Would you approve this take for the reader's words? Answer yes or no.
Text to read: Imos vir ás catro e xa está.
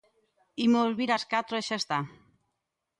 yes